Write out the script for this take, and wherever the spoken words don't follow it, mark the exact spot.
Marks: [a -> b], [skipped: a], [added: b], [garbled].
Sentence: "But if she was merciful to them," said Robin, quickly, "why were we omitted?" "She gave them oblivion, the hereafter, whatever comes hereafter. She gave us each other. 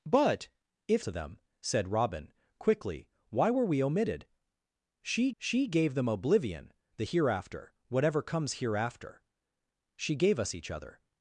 "But if [skipped: she was merciful] to them," said Robin, quickly, "why were we omitted?" "She [added: she] gave them oblivion, the hereafter, whatever comes hereafter. She gave us each other.